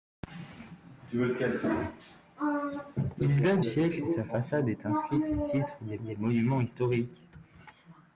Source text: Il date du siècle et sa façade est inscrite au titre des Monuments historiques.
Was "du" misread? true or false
true